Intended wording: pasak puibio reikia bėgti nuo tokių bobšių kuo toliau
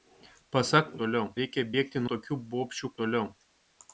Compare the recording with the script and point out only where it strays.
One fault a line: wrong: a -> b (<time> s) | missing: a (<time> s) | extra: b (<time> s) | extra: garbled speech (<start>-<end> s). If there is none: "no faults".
wrong: puibio -> toliau (1.0 s)
missing: nuo (2.0 s)
missing: kuo (3.0 s)